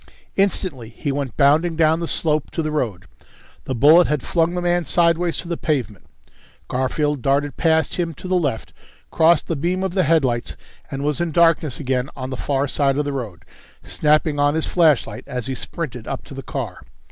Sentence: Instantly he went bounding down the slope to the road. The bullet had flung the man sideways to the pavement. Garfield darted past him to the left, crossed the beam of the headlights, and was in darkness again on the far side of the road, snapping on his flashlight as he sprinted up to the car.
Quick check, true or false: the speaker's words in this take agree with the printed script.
true